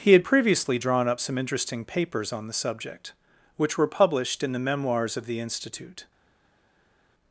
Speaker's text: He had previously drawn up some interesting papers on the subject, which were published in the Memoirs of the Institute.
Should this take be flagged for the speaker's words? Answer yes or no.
no